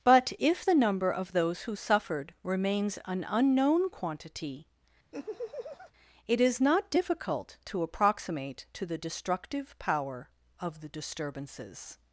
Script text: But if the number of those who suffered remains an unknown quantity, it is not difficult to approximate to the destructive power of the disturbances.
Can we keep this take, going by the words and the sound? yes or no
no